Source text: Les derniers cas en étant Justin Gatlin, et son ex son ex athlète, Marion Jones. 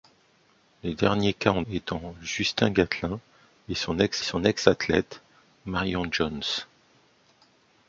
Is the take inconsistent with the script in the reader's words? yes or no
no